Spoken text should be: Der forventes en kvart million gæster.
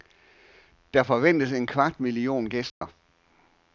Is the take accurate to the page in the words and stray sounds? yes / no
no